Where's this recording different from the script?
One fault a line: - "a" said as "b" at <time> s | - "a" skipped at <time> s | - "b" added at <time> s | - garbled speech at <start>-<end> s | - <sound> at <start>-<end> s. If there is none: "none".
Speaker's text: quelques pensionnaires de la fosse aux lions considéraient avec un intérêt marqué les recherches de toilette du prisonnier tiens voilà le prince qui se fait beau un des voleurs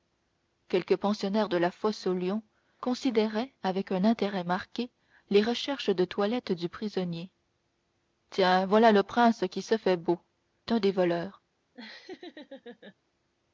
- laugh at 11.7-13.0 s